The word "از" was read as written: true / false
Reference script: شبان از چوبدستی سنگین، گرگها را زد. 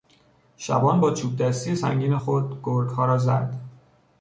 false